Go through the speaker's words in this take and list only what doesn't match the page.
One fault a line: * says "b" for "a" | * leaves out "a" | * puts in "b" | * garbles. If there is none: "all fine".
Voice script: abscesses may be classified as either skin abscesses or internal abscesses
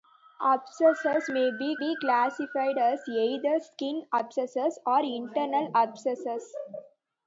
* puts in "be"